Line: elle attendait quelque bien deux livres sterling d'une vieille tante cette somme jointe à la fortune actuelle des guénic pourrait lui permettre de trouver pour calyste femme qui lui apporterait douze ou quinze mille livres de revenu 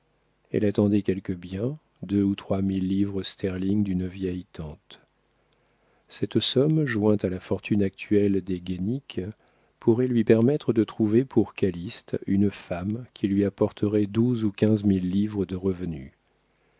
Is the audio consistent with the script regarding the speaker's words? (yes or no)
no